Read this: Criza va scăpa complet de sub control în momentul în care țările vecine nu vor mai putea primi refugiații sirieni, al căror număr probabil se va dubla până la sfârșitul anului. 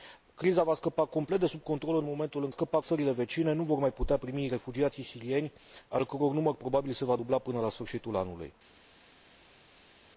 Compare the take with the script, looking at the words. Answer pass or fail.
fail